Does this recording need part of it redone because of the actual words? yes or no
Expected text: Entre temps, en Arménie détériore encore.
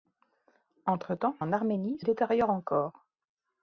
no